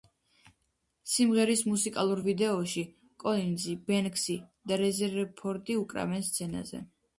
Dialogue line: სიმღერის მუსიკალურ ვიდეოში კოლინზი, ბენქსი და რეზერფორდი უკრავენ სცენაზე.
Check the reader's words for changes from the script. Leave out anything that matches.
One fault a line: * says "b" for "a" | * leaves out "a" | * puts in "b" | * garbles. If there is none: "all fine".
all fine